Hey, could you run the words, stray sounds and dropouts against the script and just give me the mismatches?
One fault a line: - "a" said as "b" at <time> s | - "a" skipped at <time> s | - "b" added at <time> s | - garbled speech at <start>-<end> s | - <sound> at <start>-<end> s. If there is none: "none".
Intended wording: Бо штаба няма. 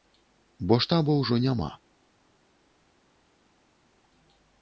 - "ўжо" added at 1.2 s